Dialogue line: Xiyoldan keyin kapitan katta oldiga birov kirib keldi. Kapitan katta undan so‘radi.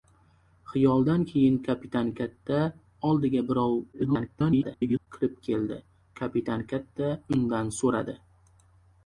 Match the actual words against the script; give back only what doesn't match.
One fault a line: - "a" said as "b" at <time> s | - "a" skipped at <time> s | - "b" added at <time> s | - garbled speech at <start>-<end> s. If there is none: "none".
- garbled speech at 3.9-5.1 s